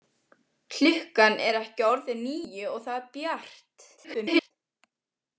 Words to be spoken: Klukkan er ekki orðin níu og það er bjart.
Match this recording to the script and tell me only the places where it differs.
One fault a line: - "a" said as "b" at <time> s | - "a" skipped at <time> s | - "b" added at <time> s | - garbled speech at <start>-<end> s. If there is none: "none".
- garbled speech at 4.0-4.5 s